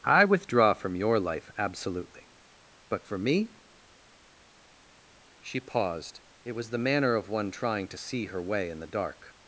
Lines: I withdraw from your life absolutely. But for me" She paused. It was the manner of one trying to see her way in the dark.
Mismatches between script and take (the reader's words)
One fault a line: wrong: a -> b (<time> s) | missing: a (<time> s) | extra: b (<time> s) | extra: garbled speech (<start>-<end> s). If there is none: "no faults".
no faults